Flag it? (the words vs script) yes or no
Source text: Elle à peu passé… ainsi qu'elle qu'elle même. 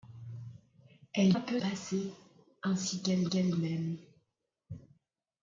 no